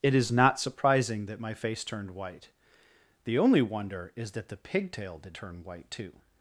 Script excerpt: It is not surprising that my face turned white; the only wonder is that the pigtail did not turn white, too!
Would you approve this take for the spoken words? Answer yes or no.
no